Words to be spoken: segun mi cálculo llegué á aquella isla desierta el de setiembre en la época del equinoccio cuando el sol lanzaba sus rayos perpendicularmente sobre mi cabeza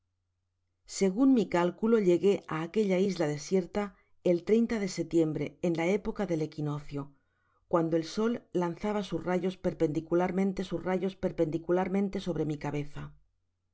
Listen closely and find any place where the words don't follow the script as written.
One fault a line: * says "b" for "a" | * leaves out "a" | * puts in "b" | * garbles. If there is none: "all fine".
* puts in "sus rayos perpendicularmente"